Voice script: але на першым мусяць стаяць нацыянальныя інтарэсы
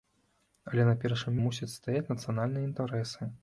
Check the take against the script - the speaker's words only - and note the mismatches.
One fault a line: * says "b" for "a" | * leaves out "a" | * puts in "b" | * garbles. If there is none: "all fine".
all fine